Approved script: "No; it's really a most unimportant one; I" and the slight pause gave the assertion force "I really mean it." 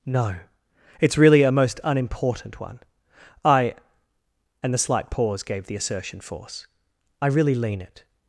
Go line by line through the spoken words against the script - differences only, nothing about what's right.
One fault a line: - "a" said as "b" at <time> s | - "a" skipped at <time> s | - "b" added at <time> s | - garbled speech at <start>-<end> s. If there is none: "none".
- "mean" said as "lean" at 7.5 s